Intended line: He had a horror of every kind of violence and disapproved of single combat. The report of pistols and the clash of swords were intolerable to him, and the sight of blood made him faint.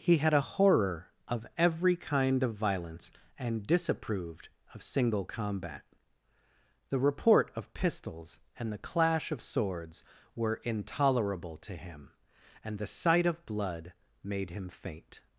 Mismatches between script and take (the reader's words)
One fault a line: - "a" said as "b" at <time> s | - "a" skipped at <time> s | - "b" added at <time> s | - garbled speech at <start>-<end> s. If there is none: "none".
none